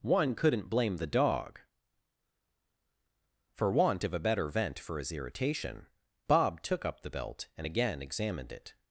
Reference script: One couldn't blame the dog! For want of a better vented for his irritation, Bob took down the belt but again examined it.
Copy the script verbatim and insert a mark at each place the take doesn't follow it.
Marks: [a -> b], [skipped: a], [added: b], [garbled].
One couldn't blame the dog! For want of a better [vented -> vent] for his irritation, Bob took [down -> up] the belt [but -> and] again examined it.